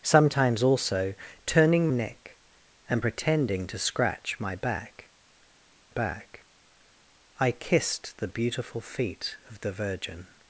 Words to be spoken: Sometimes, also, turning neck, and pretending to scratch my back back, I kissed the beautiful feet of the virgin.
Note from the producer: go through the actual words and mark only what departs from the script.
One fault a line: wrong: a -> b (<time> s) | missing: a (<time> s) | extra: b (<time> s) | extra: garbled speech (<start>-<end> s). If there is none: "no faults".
no faults